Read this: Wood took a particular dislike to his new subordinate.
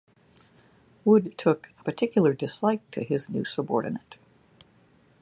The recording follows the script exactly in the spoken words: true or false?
true